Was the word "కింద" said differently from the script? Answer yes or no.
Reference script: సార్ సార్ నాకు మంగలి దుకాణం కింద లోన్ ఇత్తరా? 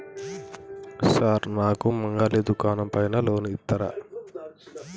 yes